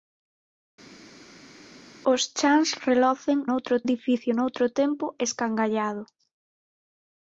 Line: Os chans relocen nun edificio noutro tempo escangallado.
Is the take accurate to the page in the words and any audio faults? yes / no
no